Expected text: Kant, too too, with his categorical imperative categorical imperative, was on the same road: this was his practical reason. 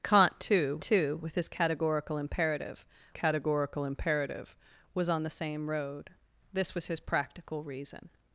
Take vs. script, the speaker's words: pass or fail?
pass